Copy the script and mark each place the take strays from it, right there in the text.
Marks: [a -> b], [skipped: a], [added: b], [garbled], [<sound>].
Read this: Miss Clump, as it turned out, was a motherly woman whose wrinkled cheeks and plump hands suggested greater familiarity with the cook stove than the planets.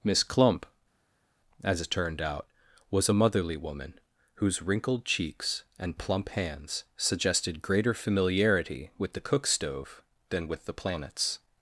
Miss Clump, as it turned out, was a motherly woman whose wrinkled cheeks and plump hands suggested greater familiarity with the cook stove than [added: with] the planets.